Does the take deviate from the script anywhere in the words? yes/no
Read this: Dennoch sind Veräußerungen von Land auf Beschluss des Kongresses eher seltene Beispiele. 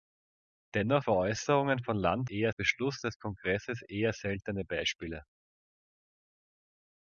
yes